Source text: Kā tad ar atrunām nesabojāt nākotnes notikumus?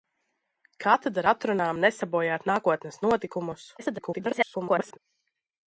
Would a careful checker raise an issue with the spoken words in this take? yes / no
yes